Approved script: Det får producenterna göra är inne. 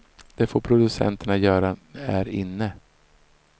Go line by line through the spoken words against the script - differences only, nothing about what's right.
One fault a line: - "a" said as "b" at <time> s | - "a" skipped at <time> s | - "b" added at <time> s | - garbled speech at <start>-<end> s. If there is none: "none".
none